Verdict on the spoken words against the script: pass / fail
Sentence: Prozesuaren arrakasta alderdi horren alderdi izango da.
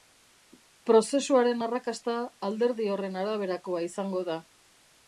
fail